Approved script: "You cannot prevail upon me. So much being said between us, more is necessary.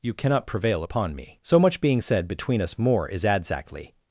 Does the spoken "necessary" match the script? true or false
false